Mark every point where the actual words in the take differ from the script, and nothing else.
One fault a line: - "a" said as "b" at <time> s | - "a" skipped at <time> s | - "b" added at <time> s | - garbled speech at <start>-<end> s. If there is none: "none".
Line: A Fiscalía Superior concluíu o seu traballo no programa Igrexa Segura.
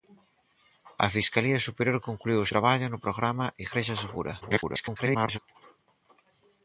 - "seu" skipped at 2.5 s
- garbled speech at 4.4-5.4 s